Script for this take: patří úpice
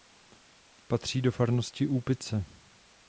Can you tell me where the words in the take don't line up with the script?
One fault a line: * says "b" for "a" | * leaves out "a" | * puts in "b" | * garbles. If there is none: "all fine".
* puts in "do farnosti"